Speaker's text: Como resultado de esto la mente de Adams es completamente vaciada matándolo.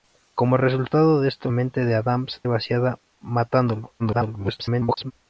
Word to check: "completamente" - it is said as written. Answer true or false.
false